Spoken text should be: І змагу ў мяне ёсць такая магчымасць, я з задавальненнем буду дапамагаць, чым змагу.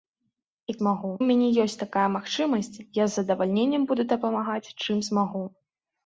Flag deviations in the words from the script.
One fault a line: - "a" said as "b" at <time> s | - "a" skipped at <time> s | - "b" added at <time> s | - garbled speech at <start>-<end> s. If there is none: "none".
none